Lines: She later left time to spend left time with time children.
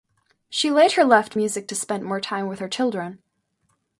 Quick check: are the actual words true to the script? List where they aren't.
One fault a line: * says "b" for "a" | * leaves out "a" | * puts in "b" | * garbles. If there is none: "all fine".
* says "music" for "time"
* says "more" for "left"
* says "her" for "time"